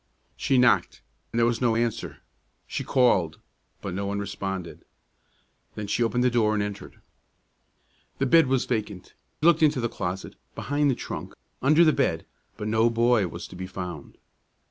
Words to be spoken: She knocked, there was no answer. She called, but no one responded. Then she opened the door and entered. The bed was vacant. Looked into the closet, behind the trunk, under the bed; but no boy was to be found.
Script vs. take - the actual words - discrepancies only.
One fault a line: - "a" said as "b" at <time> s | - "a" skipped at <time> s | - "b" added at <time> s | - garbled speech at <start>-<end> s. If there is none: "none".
none